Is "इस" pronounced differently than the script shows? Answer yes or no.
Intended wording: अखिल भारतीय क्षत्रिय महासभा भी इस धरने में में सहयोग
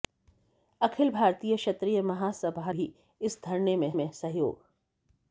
no